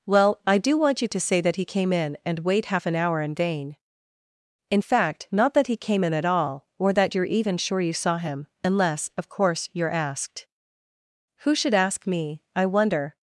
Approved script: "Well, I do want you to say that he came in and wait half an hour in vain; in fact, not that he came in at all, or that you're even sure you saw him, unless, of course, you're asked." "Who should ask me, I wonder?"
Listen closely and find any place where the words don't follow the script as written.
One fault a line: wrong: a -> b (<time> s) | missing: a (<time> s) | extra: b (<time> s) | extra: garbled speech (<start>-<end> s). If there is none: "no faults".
no faults